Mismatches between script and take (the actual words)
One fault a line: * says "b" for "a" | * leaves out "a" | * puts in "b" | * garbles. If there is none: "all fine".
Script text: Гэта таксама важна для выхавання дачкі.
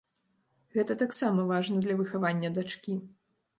all fine